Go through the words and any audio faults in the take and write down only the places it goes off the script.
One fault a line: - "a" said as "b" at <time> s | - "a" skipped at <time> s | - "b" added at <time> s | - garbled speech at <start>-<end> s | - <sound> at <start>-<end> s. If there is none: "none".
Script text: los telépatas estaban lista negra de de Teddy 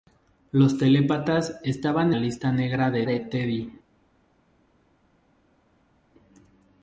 none